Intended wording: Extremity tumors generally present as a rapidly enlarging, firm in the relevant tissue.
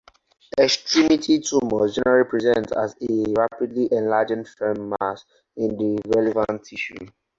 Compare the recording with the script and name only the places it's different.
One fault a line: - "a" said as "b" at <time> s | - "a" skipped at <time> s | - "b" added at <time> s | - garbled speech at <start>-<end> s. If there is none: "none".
- "mass" added at 5.0 s